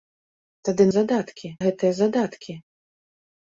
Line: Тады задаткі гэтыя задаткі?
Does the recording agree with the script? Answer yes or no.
yes